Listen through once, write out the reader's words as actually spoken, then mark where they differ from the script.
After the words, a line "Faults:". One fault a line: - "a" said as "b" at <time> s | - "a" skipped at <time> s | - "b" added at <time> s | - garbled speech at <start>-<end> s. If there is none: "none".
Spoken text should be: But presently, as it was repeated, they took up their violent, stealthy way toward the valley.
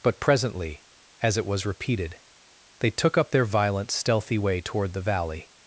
But presently, as it was repeated, they took up their violent, stealthy way toward the valley.
Faults:
none